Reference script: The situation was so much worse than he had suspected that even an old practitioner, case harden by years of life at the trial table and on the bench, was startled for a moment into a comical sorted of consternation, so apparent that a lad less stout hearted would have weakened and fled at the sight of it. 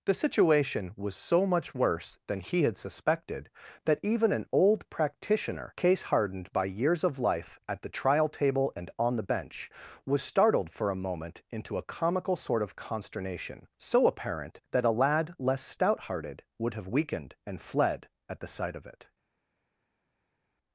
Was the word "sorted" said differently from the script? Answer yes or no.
yes